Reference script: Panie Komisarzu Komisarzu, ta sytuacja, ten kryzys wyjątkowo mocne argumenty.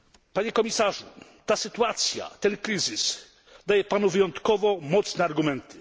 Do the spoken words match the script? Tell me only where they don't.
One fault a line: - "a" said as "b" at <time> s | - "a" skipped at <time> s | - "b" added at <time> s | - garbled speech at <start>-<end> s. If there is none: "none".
- "Komisarzu" skipped at 1.1 s
- "daje Panu" added at 3.7 s